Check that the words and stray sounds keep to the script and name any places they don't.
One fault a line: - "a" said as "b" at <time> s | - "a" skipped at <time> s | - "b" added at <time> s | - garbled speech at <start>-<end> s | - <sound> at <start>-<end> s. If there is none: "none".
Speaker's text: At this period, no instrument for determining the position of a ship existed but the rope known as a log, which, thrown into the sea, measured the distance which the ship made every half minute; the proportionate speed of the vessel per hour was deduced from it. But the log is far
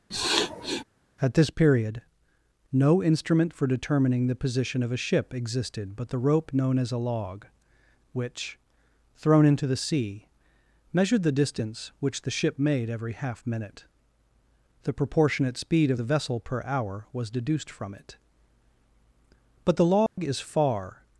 - sniff at 0.1-0.8 s
- dropout at 20.1-20.2 s